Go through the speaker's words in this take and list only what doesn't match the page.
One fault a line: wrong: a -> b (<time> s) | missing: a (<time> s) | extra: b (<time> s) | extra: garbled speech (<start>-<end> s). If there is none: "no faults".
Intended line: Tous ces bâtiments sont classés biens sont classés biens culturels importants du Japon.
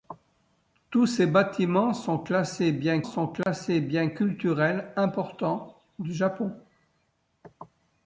no faults